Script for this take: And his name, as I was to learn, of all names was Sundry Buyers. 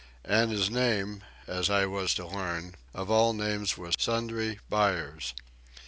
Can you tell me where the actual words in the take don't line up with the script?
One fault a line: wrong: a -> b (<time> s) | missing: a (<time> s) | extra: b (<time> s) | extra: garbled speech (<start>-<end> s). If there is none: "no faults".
no faults